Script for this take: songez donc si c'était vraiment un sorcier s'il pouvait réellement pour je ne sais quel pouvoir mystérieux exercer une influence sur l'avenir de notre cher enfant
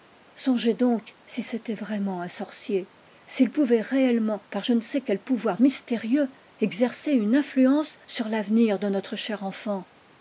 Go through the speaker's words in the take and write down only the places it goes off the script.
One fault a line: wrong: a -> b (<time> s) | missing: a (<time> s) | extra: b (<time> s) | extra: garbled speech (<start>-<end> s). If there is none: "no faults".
wrong: pour -> par (4.5 s)